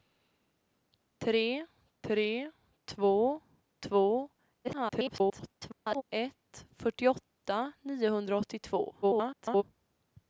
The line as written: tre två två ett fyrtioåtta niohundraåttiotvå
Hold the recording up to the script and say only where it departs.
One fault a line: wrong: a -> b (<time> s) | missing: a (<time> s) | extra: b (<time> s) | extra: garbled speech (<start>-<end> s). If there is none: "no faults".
extra: tre (2.0 s)
extra: garbled speech (4.6-6.0 s)
extra: garbled speech (9.0-9.6 s)